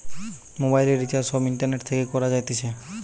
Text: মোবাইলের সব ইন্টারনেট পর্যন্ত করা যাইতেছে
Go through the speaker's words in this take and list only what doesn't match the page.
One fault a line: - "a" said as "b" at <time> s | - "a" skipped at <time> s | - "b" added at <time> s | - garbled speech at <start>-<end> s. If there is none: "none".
- "রিচার্জ" added at 1.0 s
- "পর্যন্ত" said as "থেকে" at 1.9 s